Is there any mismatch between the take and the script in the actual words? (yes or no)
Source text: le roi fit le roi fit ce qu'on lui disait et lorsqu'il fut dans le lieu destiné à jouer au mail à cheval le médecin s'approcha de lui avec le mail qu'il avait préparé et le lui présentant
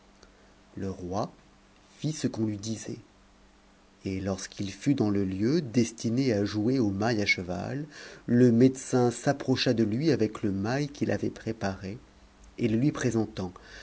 yes